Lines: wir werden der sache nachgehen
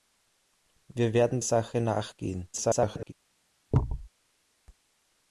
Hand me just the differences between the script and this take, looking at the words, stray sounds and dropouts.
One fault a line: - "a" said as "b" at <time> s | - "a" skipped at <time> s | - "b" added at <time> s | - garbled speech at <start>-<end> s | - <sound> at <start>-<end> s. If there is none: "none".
- "der" skipped at 1.4 s
- garbled speech at 2.5-3.1 s
- thud at 3.7-4.1 s